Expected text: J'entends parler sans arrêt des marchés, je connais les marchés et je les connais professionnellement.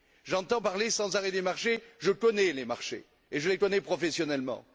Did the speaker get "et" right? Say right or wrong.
right